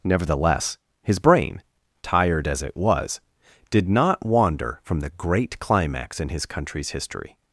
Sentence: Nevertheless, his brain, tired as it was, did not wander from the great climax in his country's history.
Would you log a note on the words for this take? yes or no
no